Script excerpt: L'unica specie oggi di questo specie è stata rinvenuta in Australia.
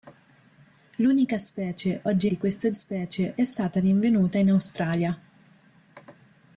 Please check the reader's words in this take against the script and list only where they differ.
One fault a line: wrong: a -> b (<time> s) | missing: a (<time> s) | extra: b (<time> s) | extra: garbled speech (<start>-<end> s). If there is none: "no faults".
no faults